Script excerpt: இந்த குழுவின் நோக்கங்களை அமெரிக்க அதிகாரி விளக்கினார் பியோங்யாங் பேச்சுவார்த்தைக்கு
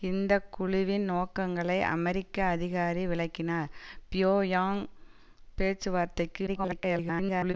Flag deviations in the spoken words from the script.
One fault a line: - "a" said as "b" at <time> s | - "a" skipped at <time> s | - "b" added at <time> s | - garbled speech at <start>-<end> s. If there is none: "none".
- garbled speech at 6.5-7.5 s